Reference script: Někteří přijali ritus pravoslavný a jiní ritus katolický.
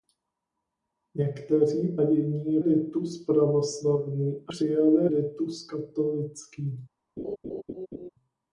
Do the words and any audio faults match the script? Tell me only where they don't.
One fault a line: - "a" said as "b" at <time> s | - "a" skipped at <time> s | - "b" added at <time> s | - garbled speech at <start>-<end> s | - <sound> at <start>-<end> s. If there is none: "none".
- "přijali" said as "jiní" at 2.0 s
- "jiní" said as "přijali" at 4.5 s
- laugh at 7.2-8.1 s